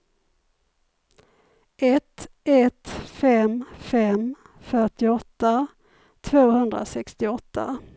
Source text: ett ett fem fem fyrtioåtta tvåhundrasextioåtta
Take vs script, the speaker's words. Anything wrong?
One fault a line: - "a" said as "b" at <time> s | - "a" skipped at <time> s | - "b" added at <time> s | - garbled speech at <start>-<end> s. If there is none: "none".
none